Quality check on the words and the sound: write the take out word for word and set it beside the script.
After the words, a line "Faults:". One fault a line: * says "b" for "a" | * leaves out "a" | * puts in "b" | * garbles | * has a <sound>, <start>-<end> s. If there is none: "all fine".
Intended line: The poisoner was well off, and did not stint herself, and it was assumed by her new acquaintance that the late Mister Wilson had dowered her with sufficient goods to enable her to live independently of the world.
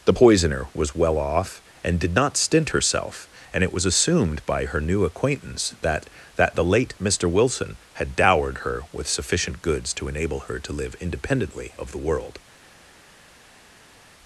The poisoner was well off, and did not stint herself, and it was assumed by her new acquaintance that that the late Mister Wilson had dowered her with sufficient goods to enable her to live independently of the world.
Faults:
* puts in "that"